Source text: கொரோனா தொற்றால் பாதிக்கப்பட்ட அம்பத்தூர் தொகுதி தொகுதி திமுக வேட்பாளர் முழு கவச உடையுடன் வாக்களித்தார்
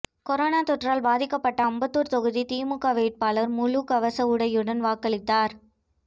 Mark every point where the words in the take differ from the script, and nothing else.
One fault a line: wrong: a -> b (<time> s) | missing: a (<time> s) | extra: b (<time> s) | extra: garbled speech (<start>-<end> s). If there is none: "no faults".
missing: தொகுதி (2.4 s)